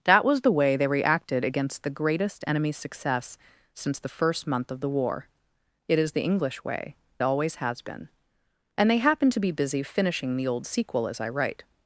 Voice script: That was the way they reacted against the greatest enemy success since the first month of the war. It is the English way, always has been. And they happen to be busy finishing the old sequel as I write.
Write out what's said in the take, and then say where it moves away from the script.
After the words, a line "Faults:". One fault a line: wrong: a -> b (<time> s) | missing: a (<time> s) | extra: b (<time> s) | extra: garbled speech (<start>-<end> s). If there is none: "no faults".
That was the way they reacted against the greatest enemy success since the first month of the war. It is the English way, always has been. And they happen to be busy finishing the old sequel as I write.
Faults:
no faults